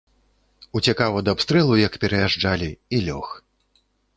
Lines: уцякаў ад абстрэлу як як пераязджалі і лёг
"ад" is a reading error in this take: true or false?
false